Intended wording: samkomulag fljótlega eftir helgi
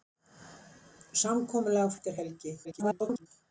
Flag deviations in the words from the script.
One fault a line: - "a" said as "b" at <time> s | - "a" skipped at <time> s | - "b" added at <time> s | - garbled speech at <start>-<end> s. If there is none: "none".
- "fljótlega" skipped at 1.9 s
- garbled speech at 2.6-3.3 s